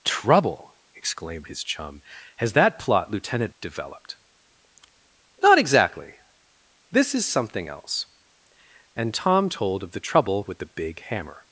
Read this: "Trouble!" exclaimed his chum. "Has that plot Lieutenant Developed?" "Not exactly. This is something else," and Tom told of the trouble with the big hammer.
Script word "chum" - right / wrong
right